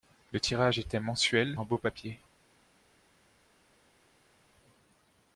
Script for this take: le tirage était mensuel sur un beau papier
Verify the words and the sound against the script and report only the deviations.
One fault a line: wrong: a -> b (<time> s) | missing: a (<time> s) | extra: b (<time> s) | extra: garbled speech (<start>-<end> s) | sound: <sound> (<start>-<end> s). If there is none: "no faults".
missing: sur (1.6 s)